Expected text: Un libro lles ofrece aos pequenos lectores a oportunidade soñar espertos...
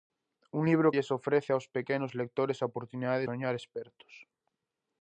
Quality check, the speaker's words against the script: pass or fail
pass